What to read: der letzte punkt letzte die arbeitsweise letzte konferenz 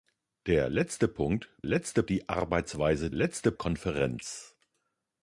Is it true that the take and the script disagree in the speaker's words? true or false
false